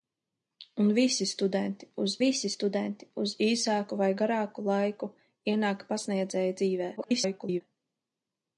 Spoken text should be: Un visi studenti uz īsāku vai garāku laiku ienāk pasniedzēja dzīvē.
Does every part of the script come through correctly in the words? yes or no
no